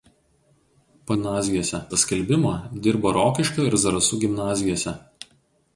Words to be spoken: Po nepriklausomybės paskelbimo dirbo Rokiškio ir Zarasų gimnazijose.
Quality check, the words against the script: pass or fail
fail